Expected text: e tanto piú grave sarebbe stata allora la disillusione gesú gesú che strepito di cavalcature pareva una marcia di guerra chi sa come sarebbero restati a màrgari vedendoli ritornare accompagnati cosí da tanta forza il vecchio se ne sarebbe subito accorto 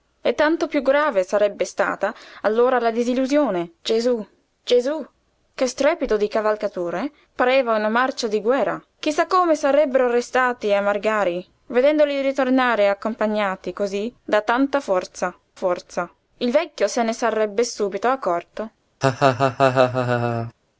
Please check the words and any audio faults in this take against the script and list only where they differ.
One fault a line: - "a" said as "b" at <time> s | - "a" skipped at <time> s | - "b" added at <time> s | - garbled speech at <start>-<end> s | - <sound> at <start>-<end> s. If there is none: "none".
- "forza" added at 15.5 s
- laugh at 19.0-20.5 s